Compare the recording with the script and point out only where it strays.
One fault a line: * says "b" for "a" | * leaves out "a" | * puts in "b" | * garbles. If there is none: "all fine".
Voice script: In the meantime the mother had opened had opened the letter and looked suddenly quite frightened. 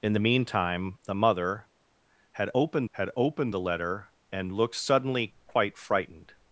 all fine